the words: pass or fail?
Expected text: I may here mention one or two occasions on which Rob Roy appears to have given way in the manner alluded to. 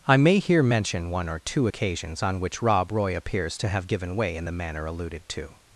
pass